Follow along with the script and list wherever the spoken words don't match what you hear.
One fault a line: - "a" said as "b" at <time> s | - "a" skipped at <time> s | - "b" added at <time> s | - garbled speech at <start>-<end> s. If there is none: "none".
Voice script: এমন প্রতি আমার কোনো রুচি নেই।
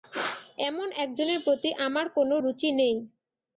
- "একজনের" added at 1.0 s